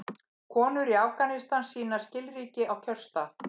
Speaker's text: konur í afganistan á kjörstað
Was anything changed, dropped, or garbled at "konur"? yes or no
no